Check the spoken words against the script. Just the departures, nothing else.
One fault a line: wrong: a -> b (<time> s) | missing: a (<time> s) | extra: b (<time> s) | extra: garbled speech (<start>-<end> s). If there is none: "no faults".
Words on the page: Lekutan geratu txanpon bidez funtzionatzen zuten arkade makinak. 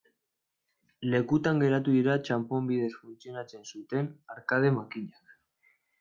extra: dira (2.0 s)